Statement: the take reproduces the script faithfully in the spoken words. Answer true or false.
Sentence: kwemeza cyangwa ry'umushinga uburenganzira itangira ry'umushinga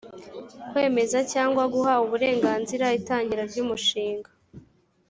false